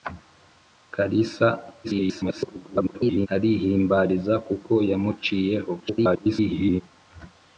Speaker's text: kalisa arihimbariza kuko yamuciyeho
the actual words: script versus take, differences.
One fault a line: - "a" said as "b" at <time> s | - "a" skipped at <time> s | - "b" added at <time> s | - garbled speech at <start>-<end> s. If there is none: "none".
- garbled speech at 1.8-3.3 s
- garbled speech at 5.8-6.8 s